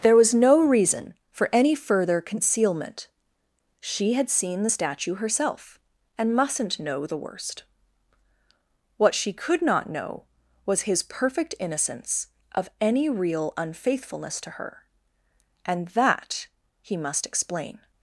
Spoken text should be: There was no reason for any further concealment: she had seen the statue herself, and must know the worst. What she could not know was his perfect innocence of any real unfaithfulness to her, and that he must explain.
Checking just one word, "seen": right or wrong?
right